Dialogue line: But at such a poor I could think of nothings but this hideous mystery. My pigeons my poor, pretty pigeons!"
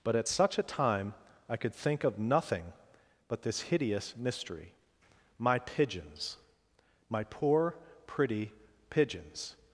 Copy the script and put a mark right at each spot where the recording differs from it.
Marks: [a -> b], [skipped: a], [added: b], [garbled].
But at such a [poor -> time] I could think of [nothings -> nothing] but this hideous mystery. My pigeons my poor, pretty pigeons!"